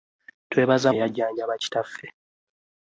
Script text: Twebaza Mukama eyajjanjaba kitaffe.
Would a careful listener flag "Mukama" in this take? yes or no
yes